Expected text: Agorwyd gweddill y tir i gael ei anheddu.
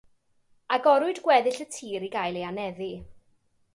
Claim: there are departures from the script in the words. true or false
false